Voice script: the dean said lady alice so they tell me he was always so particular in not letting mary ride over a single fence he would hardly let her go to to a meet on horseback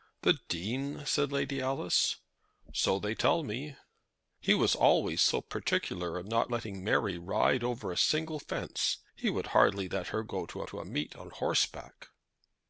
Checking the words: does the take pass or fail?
pass